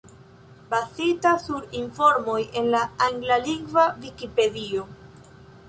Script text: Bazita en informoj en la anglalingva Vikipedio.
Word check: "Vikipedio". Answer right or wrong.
right